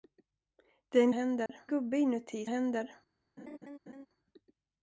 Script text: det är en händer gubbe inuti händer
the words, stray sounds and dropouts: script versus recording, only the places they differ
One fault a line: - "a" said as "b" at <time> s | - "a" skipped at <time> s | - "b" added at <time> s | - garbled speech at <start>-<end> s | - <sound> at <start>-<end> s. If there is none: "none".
- dropout at 1.5-1.5 s
- laugh at 3.4-4.1 s